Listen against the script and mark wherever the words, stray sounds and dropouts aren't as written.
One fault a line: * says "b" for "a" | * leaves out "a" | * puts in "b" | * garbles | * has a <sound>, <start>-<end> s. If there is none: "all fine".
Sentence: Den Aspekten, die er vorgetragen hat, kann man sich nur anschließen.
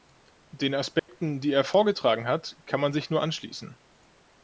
* has a dropout, 1.0-1.1 s